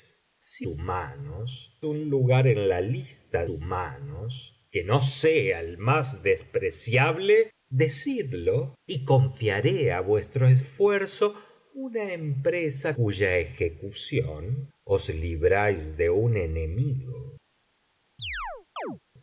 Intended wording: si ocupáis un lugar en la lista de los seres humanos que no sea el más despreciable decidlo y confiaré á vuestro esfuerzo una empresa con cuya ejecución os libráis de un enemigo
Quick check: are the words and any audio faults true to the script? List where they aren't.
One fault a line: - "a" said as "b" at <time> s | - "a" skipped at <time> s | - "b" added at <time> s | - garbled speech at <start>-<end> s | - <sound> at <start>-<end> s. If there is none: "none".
- "ocupáis" said as "humanos" at 0.7 s
- "de los seres" skipped at 3.5 s
- "con" skipped at 13.0 s
- chirp at 18.2-19.0 s